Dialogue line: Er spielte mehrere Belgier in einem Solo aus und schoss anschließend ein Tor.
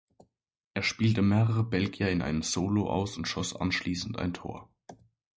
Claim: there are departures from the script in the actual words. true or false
false